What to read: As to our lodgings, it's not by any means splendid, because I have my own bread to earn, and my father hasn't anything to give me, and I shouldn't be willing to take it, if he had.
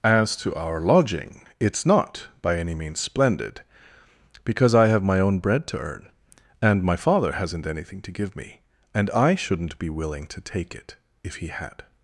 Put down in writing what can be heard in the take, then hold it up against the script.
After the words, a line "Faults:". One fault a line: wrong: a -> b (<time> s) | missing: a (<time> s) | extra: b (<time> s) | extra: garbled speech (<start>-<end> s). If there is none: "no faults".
As to our lodging, it's not by any means splendid, because I have my own bread to earn, and my father hasn't anything to give me, and I shouldn't be willing to take it, if he had.
Faults:
wrong: lodgings -> lodging (0.8 s)